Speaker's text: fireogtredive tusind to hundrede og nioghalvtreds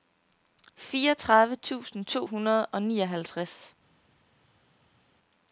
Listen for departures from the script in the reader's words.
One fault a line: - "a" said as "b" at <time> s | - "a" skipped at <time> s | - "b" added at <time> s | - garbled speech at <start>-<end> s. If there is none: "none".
none